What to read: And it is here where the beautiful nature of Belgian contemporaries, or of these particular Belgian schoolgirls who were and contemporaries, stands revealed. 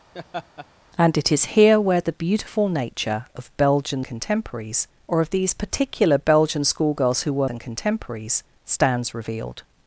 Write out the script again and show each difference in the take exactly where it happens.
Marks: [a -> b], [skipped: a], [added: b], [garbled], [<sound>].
[laugh] And it is here where the beautiful nature of Belgian contemporaries, or of these particular Belgian schoolgirls who were and contemporaries, stands revealed.